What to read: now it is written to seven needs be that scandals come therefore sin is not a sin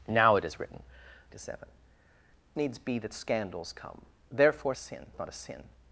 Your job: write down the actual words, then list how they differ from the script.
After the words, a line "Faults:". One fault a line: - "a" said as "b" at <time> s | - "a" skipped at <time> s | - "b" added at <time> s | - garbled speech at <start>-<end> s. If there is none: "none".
now it is written to seven needs be that scandals come therefore sin is not a sin
Faults:
none